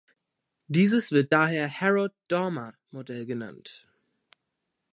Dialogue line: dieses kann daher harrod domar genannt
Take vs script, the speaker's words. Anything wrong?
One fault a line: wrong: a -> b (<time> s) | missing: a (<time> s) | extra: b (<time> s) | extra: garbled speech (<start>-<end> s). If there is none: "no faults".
wrong: kann -> wird (1.1 s)
extra: modell (2.9 s)